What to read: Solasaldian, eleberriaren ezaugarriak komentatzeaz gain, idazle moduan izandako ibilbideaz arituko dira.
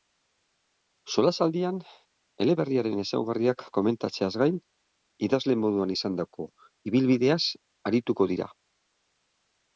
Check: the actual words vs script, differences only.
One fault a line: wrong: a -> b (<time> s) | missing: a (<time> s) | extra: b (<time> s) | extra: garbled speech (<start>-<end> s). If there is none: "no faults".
no faults